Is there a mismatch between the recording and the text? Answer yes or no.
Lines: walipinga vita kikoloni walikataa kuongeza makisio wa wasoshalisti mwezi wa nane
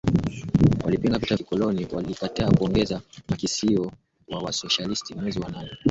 no